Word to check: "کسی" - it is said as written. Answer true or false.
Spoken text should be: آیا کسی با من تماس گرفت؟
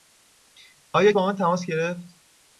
false